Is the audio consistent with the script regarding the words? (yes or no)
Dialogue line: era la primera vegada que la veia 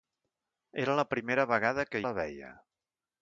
yes